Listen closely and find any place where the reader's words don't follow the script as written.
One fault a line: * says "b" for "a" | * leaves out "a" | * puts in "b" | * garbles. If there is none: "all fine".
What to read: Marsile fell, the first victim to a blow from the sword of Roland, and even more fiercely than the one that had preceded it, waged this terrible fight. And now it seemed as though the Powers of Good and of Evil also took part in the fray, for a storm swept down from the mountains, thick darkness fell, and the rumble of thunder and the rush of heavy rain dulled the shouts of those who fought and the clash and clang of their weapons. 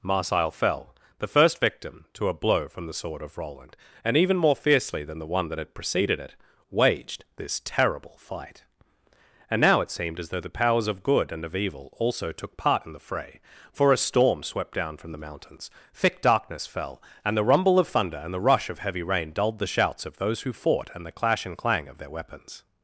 all fine